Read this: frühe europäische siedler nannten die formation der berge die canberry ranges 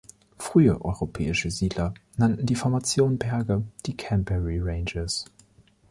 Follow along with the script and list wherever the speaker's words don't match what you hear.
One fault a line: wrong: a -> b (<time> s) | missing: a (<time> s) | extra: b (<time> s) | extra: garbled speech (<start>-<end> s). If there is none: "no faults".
missing: der (3.2 s)